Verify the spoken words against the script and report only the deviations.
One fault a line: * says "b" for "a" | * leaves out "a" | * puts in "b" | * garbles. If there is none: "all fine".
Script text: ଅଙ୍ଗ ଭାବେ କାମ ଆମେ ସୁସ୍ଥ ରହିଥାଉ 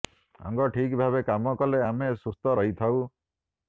* puts in "ଠିକ୍"
* puts in "କଲେ"